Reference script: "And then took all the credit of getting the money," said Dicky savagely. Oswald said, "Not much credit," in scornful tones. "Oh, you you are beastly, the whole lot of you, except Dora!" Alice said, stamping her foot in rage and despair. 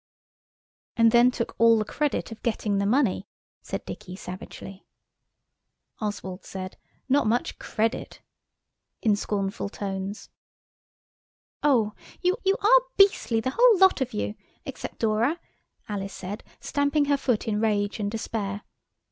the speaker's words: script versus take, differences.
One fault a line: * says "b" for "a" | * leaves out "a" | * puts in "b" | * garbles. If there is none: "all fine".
all fine